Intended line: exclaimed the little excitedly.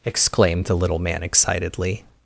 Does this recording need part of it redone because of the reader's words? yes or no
yes